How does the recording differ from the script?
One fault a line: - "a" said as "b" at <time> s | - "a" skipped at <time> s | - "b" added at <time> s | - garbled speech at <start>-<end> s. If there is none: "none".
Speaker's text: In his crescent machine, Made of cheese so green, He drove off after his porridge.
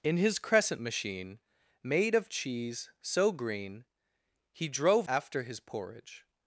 - "off" skipped at 5.1 s